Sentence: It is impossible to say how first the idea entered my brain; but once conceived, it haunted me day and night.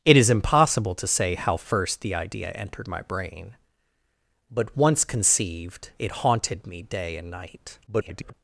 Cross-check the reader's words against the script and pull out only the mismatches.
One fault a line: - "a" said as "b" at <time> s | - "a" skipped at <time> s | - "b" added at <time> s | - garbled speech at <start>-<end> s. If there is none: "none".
- garbled speech at 7.9-8.3 s